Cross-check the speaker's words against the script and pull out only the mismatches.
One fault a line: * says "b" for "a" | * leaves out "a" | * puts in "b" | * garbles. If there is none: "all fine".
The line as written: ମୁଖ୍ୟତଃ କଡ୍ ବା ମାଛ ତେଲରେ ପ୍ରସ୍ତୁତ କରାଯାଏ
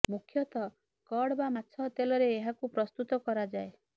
* puts in "ଏହାକୁ"